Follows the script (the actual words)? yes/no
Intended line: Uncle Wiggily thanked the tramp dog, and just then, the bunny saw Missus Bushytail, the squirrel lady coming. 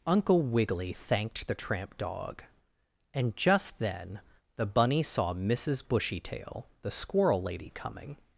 yes